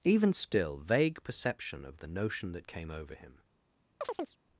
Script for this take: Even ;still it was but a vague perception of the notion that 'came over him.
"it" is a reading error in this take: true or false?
true